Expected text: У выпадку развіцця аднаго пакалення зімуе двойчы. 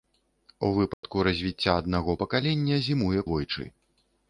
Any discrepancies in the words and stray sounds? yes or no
yes